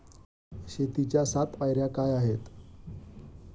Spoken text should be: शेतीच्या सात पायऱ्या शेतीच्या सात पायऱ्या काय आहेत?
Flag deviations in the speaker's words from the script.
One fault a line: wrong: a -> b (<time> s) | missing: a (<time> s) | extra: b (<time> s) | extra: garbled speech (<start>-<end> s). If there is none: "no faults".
missing: शेतीच्या सात पायऱ्या (1.9 s)